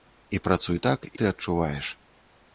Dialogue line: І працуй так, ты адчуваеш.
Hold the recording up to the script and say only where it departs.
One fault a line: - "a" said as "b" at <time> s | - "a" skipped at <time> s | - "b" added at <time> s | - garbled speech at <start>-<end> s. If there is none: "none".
none